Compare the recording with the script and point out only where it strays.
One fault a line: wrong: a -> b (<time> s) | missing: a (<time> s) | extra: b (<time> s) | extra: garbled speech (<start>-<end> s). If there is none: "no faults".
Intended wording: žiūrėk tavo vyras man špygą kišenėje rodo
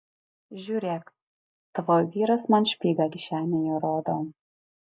no faults